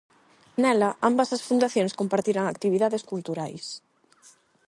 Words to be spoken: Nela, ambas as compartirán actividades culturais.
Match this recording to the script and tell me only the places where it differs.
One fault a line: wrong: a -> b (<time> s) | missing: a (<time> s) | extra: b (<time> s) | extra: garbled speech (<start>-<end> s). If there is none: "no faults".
extra: fundacións (1.5 s)